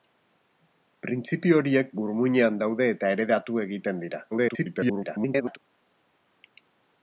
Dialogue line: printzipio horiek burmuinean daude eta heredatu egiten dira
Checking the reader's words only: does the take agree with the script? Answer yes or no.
no